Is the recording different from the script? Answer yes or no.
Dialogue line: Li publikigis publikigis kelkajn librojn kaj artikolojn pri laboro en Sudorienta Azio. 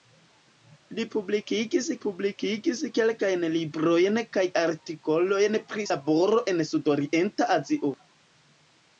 no